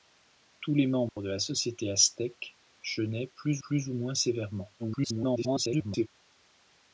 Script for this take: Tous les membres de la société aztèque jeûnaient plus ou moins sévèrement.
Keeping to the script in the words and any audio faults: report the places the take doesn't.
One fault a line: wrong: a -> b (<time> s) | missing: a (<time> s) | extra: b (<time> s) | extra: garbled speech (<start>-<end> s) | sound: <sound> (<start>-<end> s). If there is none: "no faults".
sound: dropout (1.1-1.2 s)
extra: plus (3.6 s)
extra: garbled speech (4.8-6.1 s)